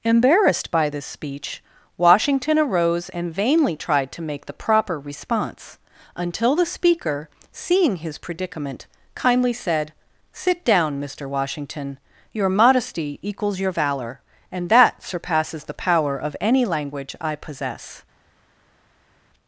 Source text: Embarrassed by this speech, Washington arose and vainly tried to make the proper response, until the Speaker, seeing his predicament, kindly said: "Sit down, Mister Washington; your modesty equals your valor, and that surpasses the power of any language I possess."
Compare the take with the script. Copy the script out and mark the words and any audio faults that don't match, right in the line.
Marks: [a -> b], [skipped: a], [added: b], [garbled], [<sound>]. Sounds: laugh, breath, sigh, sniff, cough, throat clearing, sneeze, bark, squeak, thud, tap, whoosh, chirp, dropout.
Embarrassed by this speech, Washington arose and vainly tried to make the proper response, until the Speaker, seeing his predicament, kindly said: "Sit down, Mister Washington; your modesty equals your valor, and that surpasses the power of any language I possess."